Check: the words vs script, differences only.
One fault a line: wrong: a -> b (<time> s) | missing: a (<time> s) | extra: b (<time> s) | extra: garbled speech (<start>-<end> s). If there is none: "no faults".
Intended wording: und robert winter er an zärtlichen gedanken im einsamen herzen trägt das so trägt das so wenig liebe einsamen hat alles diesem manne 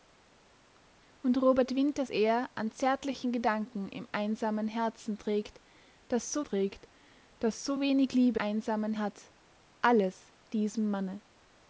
no faults